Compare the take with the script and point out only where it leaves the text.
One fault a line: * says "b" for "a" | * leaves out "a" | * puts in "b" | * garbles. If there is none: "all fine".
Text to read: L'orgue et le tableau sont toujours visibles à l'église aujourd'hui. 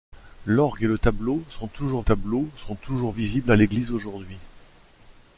* puts in "tableau sont toujours"